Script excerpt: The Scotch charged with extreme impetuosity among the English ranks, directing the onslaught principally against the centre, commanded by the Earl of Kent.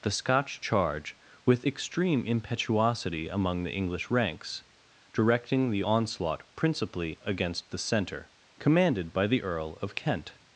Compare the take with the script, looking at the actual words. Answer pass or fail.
fail